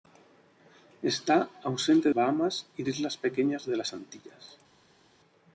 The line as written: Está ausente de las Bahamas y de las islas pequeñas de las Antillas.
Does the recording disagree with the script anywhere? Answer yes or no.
yes